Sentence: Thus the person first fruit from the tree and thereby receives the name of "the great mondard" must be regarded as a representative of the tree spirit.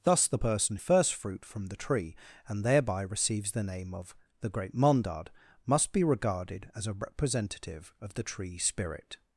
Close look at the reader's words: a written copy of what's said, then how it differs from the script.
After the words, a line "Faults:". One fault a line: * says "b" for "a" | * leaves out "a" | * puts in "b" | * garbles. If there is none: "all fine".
Thus the person first fruit from the tree and thereby receives the name of "the great mondard" must be regarded as a representative of the tree spirit.
Faults:
all fine